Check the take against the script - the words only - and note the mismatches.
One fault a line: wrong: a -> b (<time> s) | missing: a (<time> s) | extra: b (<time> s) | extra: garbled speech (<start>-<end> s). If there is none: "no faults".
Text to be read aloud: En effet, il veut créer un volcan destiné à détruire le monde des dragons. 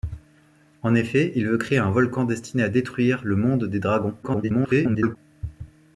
extra: garbled speech (4.2-5.2 s)